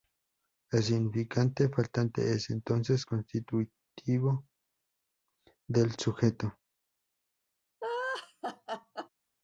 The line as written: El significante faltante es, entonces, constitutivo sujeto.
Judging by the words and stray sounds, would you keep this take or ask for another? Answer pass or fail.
fail